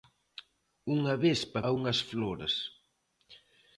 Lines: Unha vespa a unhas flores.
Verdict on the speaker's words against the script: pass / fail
pass